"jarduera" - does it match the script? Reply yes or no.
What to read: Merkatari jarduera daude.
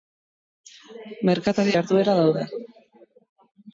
yes